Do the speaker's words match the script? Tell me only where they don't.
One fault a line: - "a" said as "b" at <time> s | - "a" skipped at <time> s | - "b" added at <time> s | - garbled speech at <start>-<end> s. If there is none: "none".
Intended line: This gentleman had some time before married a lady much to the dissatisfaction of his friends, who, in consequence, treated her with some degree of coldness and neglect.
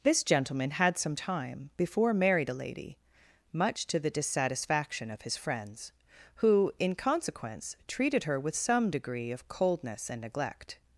none